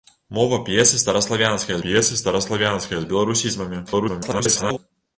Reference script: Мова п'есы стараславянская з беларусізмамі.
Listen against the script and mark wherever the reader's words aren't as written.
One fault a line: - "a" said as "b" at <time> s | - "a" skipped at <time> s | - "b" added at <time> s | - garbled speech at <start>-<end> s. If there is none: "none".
- "п'есы стараславянская" added at 1.9 s
- garbled speech at 3.9-4.8 s